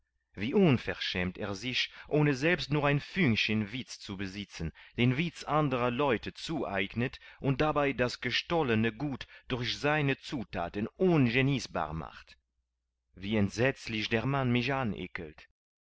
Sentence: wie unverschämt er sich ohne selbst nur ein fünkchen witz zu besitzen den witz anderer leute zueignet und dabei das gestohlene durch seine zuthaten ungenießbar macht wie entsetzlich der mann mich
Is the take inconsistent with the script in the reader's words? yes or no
yes